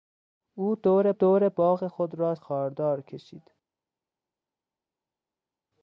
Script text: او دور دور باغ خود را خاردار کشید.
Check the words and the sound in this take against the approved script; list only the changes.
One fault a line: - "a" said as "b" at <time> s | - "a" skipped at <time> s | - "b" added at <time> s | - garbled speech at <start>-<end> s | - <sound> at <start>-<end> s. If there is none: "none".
none